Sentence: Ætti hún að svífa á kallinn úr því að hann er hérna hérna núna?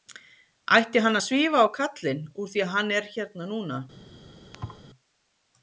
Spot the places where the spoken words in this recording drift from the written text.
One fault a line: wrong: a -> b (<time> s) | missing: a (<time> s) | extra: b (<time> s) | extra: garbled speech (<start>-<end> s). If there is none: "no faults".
wrong: hún -> hann (1.1 s)
missing: hérna (3.5 s)